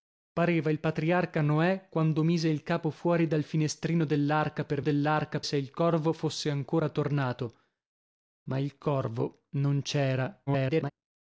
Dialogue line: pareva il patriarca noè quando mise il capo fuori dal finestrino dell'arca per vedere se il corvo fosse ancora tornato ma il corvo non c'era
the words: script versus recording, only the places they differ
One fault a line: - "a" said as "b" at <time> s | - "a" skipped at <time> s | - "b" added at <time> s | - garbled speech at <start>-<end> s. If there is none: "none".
- "vedere" said as "dell'arca" at 4.8 s
- garbled speech at 10.5-10.9 s